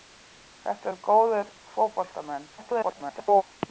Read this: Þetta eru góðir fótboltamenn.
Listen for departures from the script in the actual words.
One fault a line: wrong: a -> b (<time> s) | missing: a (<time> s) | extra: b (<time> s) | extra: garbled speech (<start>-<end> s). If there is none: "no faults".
extra: garbled speech (2.6-3.4 s)